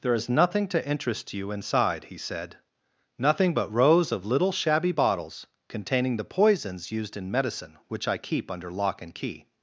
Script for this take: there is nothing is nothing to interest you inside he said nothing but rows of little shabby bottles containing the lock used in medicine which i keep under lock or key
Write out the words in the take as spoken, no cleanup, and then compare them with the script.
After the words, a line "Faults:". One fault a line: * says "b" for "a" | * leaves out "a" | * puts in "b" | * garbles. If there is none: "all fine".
there is nothing to interest you inside he said nothing but rows of little shabby bottles containing the poisons used in medicine which i keep under lock and key
Faults:
* leaves out "is nothing"
* says "poisons" for "lock"
* says "and" for "or"